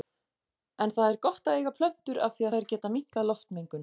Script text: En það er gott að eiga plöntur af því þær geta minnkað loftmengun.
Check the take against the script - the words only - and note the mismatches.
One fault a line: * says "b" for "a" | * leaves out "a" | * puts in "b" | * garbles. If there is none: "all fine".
all fine